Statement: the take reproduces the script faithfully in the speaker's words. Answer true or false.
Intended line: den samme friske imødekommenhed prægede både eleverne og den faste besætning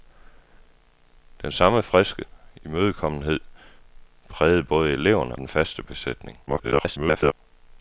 false